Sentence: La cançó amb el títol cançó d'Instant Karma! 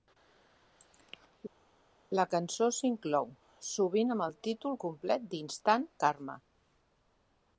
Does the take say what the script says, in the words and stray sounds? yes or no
no